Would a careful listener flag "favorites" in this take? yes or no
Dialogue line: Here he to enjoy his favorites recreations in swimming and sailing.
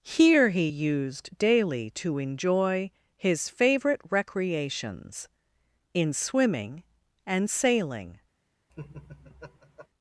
yes